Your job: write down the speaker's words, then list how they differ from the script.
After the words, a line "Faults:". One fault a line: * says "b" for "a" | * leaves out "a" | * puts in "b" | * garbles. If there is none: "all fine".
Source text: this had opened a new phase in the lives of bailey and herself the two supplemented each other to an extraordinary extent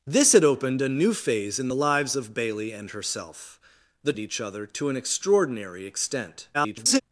this had opened a new phase in the lives of bailey and herself the each other to an extraordinary extent [garbled]
Faults:
* leaves out "two supplemented"
* garbles